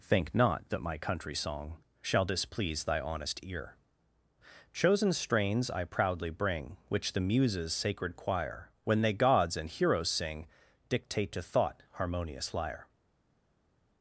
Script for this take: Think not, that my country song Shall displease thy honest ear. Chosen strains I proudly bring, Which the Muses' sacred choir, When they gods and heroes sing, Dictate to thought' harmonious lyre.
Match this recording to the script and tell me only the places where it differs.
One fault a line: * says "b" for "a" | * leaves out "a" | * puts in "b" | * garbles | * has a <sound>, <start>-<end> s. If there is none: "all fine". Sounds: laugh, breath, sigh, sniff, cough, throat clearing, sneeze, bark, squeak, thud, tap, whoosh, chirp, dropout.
all fine